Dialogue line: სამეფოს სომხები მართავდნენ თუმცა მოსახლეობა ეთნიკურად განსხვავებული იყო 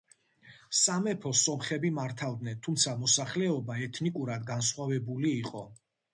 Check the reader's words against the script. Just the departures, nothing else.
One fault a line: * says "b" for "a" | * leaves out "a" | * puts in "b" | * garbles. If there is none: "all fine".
all fine